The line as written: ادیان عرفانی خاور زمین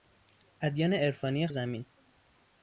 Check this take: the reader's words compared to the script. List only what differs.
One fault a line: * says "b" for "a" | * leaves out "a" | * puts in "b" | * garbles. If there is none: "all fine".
* leaves out "خاور"